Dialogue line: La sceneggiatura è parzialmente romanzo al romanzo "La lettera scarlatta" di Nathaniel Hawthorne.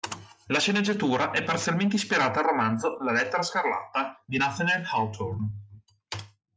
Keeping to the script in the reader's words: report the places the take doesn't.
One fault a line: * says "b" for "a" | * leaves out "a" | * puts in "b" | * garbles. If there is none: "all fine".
* says "ispirata" for "romanzo"